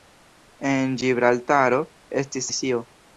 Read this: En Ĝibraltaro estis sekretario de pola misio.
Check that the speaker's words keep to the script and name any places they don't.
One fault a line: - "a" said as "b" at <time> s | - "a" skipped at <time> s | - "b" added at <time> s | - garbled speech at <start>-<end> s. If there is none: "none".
- "sekretario de pola" skipped at 2.5 s